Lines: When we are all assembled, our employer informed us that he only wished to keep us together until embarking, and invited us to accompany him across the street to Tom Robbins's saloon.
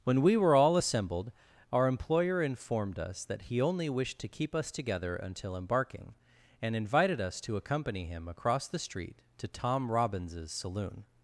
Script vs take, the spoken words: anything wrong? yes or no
yes